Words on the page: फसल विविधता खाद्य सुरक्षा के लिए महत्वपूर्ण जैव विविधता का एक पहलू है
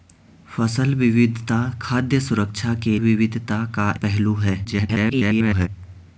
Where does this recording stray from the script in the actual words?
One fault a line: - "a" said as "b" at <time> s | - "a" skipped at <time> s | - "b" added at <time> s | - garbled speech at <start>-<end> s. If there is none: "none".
- "लिए महत्वपूर्ण जैव" skipped at 3.0 s
- "एक" skipped at 3.9 s
- garbled speech at 4.6-5.7 s